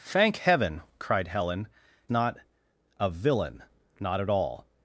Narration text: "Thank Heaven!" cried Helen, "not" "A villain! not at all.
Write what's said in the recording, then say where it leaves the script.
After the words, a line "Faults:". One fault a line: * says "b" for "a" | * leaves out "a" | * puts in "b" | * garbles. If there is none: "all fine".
"Thank Heaven!" cried Helen, "not" "A villain! not at all.
Faults:
all fine